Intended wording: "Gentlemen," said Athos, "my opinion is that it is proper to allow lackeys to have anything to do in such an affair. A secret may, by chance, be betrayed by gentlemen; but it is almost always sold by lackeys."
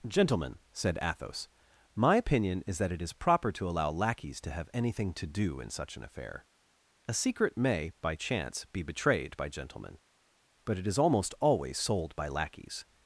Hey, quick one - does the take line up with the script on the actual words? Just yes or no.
yes